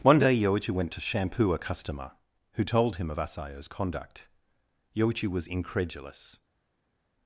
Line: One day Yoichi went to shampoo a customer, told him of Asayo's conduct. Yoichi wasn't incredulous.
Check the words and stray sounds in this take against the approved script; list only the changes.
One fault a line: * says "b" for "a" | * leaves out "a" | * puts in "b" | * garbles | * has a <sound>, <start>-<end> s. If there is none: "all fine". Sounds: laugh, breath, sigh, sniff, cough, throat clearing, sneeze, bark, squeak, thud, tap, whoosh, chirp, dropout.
* puts in "who"
* says "was" for "wasn't"